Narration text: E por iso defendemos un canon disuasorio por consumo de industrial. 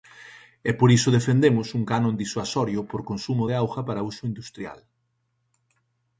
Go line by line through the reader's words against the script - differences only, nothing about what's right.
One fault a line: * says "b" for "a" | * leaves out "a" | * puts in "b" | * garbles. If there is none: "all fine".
* puts in "auga para uso"